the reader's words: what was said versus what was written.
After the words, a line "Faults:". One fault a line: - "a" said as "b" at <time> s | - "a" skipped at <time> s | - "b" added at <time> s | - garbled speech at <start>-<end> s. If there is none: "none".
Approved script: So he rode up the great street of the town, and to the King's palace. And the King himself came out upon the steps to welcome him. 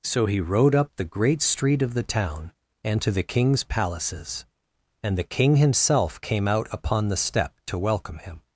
So he rode up the great street of the town, and to the King's palaces. And the King himself came out upon the step to welcome him.
Faults:
- "palace" said as "palaces" at 3.6 s
- "steps" said as "step" at 7.2 s